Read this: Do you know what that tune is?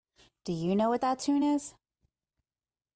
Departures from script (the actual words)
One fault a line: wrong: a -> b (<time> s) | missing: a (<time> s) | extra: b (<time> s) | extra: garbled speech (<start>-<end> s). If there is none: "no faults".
no faults